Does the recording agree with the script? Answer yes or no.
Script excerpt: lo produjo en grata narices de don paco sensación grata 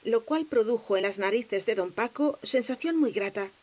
no